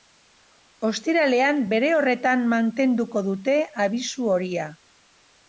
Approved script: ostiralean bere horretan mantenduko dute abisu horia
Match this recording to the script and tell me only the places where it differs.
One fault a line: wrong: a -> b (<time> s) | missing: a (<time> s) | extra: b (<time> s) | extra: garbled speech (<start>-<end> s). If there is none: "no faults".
no faults